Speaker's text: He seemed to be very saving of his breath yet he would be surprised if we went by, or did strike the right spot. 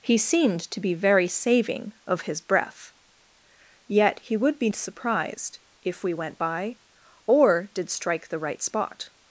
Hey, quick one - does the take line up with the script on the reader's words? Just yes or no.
yes